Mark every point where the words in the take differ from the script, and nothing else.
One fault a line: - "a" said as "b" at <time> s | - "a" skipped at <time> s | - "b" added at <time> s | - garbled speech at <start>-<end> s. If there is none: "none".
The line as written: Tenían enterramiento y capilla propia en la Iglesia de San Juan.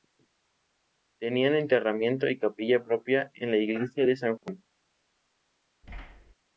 none